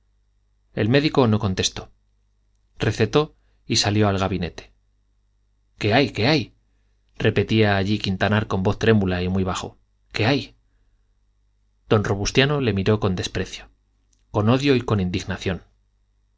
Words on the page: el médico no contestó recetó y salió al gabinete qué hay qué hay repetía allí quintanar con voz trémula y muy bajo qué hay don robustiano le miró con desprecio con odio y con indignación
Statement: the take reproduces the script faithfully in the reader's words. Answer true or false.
true